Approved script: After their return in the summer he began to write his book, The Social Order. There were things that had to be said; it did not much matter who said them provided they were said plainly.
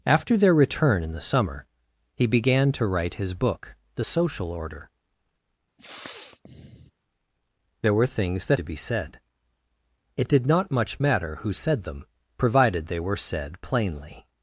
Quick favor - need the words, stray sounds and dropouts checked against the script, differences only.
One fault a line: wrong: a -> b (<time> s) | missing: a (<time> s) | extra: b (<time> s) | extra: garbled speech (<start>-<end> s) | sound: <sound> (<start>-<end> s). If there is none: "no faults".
sound: sniff (5.8-6.9 s)
missing: had (8.6 s)